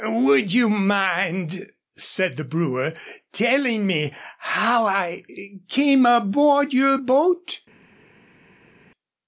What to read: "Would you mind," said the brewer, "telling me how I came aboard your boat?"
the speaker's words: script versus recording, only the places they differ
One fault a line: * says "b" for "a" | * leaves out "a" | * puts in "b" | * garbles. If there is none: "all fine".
all fine